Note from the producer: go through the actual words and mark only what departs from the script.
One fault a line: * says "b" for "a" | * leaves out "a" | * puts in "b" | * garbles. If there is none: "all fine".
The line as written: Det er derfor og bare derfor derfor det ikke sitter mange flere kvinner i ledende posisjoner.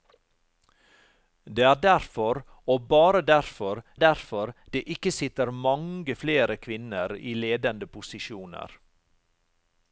all fine